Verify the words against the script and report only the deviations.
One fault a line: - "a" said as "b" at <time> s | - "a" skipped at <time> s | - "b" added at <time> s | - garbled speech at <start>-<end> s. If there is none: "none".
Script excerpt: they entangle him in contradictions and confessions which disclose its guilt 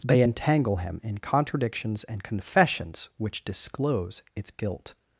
none